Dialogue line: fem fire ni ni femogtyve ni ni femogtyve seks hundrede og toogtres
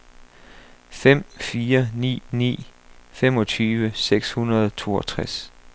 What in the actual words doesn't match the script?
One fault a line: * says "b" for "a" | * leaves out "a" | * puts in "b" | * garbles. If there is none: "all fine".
* leaves out "ni ni femogtyve"